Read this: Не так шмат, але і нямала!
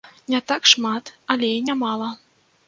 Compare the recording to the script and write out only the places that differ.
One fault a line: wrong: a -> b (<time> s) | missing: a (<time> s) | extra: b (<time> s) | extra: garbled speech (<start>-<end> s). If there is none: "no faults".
no faults